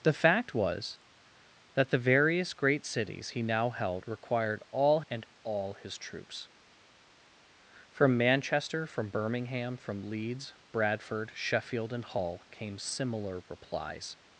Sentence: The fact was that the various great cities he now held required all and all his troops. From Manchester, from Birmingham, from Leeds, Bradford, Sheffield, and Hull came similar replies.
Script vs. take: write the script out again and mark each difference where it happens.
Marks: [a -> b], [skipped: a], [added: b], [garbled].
The fact was that the various great cities he now held required all and all his troops. From Manchester, from Birmingham, from Leeds, Bradford, Sheffield, and Hull came similar replies.